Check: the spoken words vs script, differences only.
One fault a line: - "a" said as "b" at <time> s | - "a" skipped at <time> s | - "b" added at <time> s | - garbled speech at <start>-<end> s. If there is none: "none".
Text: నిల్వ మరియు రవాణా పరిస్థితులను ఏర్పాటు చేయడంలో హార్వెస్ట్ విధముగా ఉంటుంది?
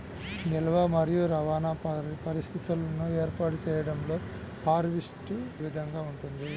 none